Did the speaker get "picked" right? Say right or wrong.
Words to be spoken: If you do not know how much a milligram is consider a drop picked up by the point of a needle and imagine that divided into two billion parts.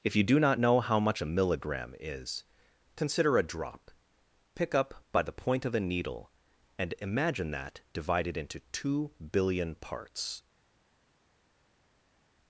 wrong